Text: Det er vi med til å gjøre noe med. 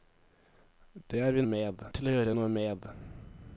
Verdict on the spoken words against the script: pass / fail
pass